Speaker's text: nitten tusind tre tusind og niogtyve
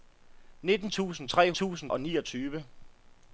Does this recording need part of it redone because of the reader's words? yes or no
no